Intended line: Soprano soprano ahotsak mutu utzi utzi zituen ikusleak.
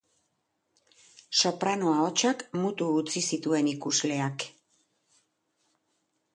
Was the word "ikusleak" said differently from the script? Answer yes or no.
no